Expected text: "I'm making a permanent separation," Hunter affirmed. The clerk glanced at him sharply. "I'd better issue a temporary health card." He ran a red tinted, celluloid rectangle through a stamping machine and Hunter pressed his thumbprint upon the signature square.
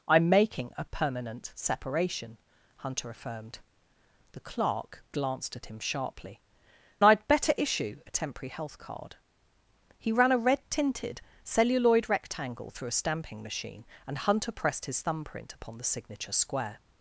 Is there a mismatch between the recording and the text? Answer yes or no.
no